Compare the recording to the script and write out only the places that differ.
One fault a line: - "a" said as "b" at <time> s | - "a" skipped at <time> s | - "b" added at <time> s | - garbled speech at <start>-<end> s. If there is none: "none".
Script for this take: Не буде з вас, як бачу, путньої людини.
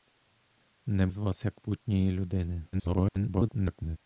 - "буде" skipped at 1.1 s
- "бачу" skipped at 1.6 s
- garbled speech at 2.7-4.0 s